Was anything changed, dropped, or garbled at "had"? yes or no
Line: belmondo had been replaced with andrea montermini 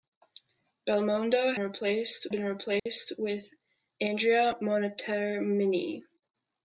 yes